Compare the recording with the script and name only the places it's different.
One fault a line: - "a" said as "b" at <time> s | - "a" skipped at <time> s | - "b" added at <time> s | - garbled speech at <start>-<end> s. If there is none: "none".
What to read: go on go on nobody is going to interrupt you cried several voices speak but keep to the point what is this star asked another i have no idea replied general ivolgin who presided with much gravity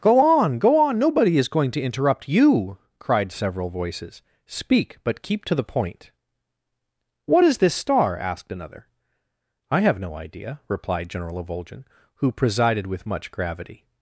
none